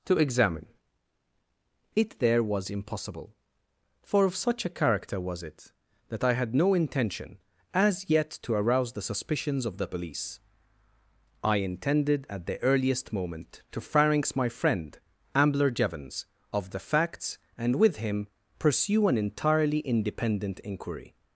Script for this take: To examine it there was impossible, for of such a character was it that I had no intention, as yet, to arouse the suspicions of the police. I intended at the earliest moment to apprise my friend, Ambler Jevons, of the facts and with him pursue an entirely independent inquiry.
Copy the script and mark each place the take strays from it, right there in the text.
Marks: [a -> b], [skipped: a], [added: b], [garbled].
To examine it there was impossible, for of such a character was it that I had no intention, as yet, to arouse the suspicions of the police. I intended at the earliest moment to [apprise -> pharynx] my friend, Ambler Jevons, of the facts and with him pursue an entirely independent inquiry.